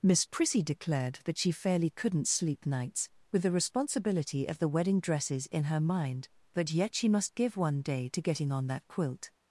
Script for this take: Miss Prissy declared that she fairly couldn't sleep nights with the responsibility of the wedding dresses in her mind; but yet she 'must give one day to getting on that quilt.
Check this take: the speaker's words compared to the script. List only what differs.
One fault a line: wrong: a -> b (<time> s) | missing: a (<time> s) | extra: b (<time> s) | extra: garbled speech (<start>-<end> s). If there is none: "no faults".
no faults